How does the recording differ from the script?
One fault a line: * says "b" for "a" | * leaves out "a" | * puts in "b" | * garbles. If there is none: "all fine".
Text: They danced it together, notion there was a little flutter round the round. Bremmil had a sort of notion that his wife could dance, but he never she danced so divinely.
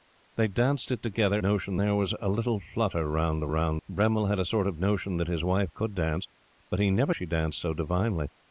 all fine